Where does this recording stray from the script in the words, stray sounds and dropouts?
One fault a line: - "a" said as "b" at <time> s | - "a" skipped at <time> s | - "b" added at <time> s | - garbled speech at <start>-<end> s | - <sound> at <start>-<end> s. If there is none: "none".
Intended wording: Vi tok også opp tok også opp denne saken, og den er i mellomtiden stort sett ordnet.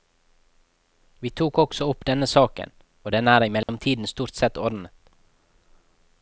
- "tok også opp" skipped at 2.0 s
- dropout at 3.6-3.7 s